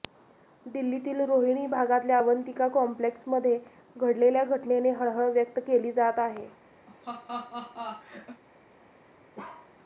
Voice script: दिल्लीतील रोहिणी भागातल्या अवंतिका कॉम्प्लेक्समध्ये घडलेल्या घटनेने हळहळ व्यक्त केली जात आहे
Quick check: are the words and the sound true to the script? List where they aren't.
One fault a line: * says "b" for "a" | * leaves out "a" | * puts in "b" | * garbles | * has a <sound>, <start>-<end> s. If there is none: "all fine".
* has a laugh, 6.9-8.4 s
* has a bark, 9.4-9.7 s